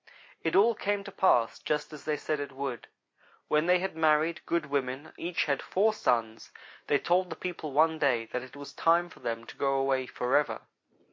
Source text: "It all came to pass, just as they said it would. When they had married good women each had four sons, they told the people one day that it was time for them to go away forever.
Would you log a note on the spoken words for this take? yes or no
no